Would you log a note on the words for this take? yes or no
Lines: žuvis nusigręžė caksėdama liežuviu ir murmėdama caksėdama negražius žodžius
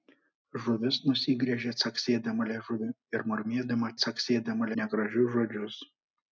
no